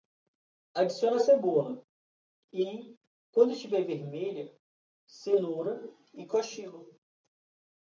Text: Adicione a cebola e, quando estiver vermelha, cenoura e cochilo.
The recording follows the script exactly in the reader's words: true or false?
true